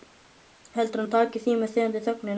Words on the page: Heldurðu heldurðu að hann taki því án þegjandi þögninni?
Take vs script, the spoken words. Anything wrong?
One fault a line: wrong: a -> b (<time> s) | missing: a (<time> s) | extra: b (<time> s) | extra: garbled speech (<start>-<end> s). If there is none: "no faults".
missing: heldurðu (1.0 s)
wrong: án -> með (1.6 s)